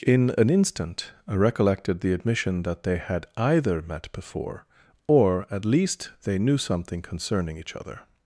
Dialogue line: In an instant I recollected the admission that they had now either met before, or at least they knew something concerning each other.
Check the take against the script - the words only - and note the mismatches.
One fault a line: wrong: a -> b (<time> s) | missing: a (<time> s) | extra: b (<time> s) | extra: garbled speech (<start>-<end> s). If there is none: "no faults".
missing: now (3.3 s)